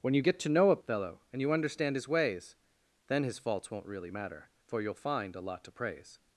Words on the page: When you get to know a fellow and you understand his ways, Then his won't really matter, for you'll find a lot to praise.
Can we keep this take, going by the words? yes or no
no